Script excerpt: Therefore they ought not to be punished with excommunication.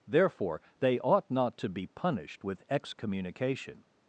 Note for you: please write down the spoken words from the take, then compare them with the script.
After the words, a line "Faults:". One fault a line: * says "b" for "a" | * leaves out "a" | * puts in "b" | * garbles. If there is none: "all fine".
Therefore they ought not to be punished with excommunication.
Faults:
all fine